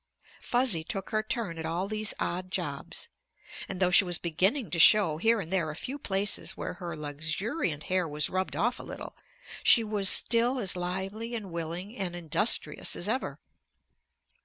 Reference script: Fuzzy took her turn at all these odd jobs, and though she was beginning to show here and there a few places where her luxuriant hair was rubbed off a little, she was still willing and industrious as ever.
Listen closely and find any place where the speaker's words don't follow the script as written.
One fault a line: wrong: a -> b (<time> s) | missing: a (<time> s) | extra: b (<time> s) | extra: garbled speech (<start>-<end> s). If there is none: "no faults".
extra: as lively and (10.6 s)